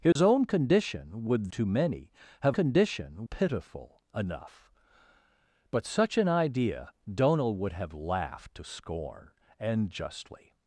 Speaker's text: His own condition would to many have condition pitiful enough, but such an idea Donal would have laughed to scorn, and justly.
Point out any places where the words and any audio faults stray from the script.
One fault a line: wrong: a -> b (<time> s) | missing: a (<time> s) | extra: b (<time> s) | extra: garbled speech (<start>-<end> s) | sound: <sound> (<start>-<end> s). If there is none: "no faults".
sound: dropout (0.1-0.2 s)